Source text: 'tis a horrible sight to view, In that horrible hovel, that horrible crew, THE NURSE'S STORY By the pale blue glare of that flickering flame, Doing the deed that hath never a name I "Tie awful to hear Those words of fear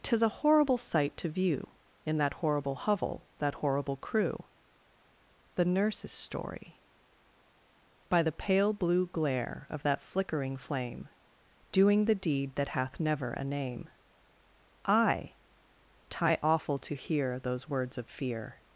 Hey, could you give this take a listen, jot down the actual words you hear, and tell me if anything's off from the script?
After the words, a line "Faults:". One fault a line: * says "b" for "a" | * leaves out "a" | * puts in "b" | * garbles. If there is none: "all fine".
'tis a horrible sight to view, In that horrible hovel, that horrible crew, THE NURSE'S STORY By the pale blue glare of that flickering flame, Doing the deed that hath never a name I "Tie awful to hear Those words of fear
Faults:
all fine